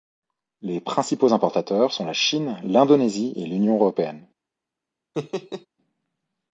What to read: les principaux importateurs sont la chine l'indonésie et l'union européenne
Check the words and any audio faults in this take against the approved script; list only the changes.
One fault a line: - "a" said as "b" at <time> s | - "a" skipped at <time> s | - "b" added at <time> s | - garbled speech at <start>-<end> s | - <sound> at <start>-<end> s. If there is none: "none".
- laugh at 5.1-5.7 s